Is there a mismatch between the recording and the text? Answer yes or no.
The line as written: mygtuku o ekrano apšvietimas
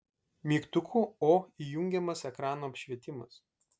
yes